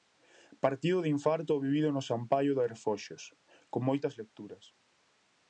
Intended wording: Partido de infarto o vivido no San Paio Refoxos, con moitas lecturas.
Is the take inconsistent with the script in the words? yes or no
yes